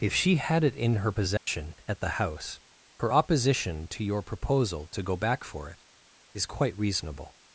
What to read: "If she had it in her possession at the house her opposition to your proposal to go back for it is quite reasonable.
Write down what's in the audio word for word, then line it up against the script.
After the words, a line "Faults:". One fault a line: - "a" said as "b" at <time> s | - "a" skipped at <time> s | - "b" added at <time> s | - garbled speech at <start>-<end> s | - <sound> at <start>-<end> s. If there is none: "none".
"If she had it in her possession at the house her opposition to your proposal to go back for it is quite reasonable.
Faults:
- dropout at 1.4-1.5 s